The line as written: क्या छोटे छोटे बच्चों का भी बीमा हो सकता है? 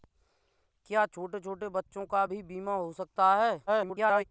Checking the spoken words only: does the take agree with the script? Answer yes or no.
no